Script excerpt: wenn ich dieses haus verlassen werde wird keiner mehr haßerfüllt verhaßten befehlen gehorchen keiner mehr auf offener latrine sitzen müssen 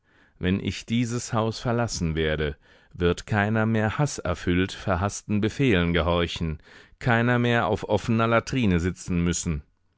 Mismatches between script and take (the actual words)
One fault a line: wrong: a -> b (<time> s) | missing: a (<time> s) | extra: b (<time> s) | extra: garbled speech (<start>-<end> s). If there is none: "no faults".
no faults